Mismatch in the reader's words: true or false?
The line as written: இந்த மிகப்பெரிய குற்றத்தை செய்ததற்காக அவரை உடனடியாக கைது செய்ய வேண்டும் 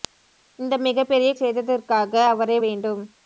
true